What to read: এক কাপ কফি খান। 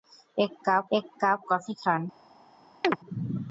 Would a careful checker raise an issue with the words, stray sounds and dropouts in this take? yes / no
yes